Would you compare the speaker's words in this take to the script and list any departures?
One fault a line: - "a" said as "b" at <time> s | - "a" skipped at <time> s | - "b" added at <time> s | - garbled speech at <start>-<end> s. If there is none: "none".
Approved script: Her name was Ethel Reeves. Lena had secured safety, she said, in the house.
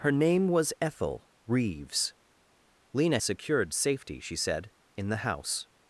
- "had" skipped at 3.2 s